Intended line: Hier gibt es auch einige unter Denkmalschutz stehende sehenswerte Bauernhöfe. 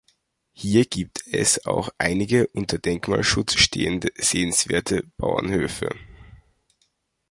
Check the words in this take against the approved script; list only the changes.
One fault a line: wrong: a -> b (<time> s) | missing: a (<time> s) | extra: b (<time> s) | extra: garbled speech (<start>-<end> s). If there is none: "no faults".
no faults